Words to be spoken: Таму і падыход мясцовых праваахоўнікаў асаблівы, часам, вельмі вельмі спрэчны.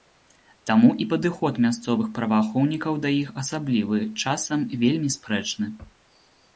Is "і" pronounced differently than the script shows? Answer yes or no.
no